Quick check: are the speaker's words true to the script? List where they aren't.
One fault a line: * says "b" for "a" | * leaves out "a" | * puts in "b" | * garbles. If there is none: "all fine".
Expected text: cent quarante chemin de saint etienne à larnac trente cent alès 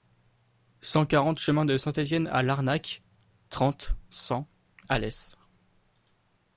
all fine